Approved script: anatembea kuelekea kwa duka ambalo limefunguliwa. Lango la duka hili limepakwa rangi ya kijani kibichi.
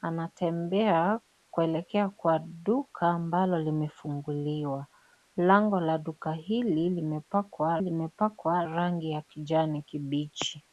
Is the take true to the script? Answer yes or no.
no